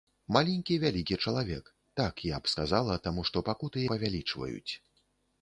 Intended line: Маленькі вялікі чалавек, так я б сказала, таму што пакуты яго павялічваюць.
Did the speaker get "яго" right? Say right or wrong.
wrong